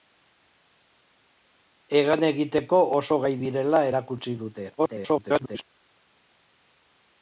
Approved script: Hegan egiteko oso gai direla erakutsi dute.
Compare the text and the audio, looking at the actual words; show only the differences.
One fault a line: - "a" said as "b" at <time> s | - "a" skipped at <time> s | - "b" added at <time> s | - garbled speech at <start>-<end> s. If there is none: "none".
- garbled speech at 4.8-5.6 s